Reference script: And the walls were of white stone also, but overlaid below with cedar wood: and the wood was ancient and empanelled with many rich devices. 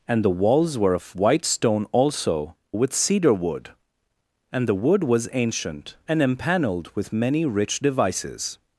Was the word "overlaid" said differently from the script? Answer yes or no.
yes